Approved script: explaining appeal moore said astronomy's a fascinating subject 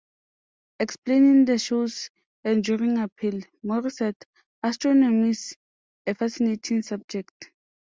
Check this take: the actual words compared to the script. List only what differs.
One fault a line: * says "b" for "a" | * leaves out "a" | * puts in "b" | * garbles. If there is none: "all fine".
* puts in "the show's enduring"